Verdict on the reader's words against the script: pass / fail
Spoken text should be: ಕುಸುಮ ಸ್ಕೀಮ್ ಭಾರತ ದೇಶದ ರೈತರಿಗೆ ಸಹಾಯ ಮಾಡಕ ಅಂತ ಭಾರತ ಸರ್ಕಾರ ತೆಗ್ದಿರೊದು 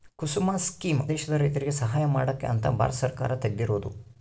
fail